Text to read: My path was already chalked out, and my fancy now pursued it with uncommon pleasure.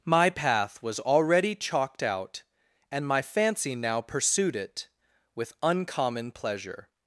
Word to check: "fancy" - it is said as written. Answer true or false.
true